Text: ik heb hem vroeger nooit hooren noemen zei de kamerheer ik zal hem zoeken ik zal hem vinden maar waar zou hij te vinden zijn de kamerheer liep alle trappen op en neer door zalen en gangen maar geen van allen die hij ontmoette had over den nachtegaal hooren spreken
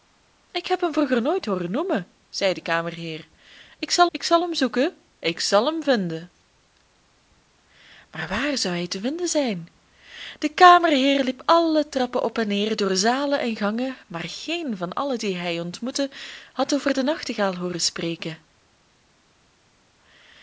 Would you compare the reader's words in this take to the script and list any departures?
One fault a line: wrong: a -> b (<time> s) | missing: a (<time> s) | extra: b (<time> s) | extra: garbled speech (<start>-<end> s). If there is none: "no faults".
extra: ik zal (4.1 s)